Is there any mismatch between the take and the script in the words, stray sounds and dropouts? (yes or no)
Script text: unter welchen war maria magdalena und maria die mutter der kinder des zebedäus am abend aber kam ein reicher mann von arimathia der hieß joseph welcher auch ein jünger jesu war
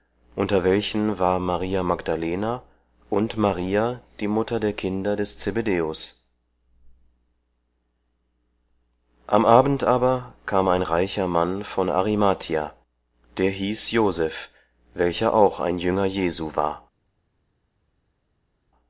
no